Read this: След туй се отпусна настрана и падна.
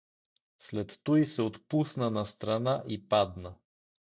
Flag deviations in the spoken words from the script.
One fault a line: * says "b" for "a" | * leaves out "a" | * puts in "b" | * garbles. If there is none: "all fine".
all fine